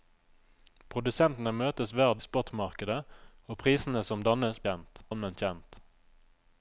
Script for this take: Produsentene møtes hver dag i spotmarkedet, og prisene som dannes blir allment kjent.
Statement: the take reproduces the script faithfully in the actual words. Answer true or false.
false